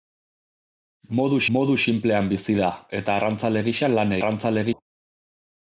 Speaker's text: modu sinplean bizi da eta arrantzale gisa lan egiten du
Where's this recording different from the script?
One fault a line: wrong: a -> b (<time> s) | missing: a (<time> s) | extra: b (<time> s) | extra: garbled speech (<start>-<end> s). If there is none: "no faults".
extra: modu (1.6 s)
wrong: egiten -> arrantzale (4.2 s)